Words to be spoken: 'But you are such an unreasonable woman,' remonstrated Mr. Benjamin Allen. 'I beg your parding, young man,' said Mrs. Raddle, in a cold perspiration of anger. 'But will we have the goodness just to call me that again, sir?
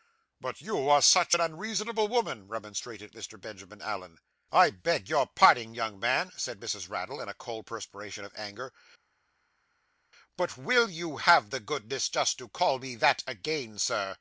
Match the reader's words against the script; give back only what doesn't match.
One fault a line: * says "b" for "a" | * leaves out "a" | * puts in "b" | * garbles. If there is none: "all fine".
* says "you" for "we"